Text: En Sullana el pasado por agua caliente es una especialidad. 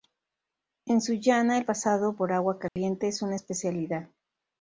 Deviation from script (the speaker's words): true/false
false